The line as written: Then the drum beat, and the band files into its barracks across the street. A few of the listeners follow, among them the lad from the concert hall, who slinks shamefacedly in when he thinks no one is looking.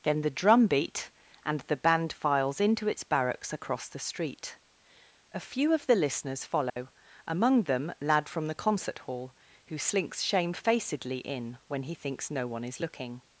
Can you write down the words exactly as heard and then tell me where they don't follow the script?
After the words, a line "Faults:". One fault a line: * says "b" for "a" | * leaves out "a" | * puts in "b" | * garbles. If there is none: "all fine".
Then the drum beat, and the band files into its barracks across the street. A few of the listeners follow, among them lad from the concert hall, who slinks shamefacedly in when he thinks no one is looking.
Faults:
* leaves out "the"